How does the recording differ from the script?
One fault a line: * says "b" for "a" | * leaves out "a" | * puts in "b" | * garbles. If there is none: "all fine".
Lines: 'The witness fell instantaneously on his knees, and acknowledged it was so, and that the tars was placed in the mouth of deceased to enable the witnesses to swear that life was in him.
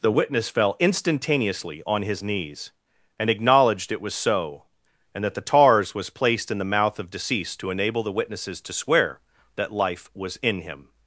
all fine